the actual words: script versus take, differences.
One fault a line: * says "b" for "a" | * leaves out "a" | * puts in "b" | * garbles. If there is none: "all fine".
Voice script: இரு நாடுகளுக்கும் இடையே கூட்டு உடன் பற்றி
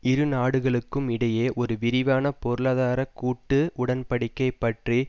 * puts in "ஒரு விரிவான பொருளாதார"
* puts in "படிக்கை"